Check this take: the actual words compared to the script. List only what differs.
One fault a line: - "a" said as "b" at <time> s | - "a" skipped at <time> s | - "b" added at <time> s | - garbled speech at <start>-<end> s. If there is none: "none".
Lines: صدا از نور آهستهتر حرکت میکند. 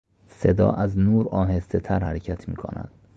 none